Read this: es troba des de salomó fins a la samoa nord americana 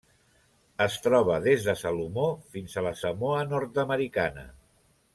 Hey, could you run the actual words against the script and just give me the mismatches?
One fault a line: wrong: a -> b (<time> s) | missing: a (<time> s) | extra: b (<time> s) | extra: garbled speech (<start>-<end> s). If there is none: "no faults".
no faults